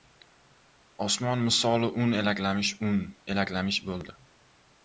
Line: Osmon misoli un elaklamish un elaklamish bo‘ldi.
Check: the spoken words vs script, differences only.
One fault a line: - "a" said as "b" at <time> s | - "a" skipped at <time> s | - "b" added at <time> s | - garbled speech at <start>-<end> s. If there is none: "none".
none